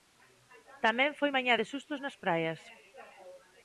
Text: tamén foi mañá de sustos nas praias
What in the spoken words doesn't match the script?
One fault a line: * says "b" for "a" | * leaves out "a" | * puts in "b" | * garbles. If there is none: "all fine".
all fine